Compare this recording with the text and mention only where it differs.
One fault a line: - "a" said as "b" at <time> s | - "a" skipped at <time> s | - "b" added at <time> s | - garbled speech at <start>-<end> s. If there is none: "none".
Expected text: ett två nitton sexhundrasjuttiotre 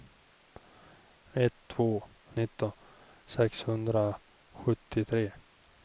none